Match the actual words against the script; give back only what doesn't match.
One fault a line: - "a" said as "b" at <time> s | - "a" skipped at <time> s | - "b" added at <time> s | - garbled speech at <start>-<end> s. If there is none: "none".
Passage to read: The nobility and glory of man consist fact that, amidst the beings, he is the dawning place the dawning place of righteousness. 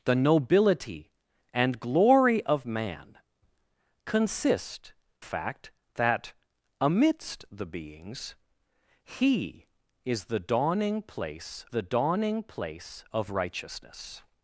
none